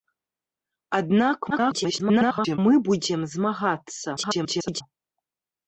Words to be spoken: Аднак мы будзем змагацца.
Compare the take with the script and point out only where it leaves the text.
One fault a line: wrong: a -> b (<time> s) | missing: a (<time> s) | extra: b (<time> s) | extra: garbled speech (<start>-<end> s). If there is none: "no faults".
extra: garbled speech (1.5-2.6 s)
extra: garbled speech (4.2-4.8 s)